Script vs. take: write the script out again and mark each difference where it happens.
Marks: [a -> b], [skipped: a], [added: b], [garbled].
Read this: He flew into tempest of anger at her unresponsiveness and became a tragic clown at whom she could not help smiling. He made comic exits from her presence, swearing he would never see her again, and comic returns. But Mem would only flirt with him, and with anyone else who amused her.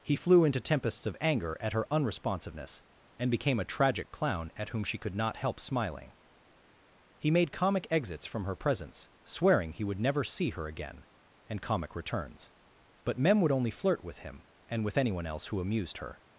He flew into [tempest -> tempests] of anger at her unresponsiveness and became a tragic clown at whom she could not help smiling. He made comic exits from her presence, swearing he would never see her again, and comic returns. But Mem would only flirt with him, and with anyone else who amused her.